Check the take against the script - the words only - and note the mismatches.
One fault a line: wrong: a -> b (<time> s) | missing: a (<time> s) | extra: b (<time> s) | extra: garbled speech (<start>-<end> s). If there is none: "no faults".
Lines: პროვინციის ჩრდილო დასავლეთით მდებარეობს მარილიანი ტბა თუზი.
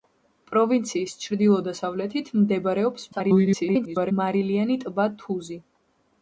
extra: garbled speech (3.1-4.1 s)